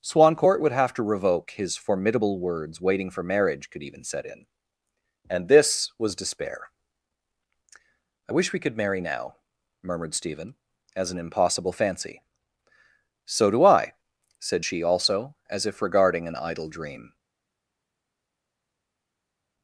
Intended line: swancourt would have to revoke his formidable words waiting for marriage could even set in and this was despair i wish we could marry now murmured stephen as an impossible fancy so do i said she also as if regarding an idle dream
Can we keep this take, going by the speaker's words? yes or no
yes